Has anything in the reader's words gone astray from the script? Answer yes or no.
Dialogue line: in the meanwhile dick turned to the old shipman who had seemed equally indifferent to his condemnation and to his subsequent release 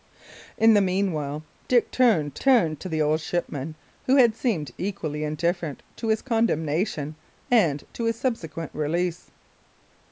yes